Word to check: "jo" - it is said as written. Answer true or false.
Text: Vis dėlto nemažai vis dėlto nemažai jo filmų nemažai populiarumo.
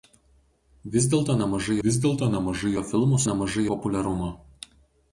true